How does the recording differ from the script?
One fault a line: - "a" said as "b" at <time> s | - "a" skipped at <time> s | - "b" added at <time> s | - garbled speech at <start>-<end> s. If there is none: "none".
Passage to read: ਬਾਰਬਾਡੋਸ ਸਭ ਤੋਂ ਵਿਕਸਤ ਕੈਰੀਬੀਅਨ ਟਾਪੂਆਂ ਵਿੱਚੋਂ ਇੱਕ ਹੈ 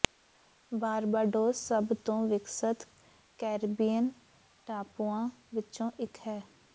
none